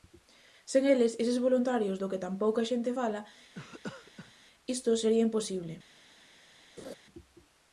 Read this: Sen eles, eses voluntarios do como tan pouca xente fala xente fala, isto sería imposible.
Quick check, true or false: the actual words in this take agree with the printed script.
false